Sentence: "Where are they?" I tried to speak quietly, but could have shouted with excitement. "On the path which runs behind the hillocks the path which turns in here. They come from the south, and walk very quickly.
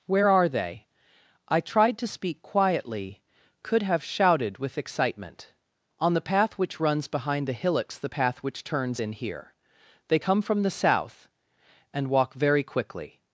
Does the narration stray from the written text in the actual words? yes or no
yes